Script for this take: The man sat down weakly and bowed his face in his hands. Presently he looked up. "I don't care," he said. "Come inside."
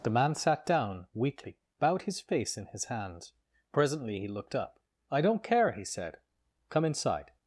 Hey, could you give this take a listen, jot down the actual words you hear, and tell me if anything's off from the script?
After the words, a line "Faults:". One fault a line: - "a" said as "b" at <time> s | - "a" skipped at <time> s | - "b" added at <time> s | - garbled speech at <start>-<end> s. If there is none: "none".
The man sat down weakly bowed his face in his hands. Presently he looked up. "I don't care," he said. "Come inside."
Faults:
- "and" skipped at 1.6 s